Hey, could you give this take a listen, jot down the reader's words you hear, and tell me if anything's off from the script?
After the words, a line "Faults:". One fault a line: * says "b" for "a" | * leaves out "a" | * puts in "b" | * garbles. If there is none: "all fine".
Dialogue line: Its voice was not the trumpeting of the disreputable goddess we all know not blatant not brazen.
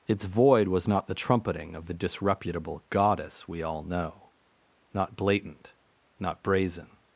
Its void was not the trumpeting of the disreputable goddess we all know not blatant not brazen.
Faults:
* says "void" for "voice"